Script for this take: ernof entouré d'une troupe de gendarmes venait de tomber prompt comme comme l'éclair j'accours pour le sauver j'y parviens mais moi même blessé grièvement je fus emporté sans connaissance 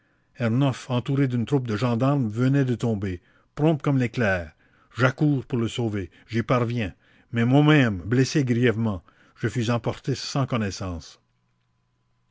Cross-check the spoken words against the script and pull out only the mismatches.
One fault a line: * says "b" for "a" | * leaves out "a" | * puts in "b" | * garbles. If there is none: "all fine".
* leaves out "comme"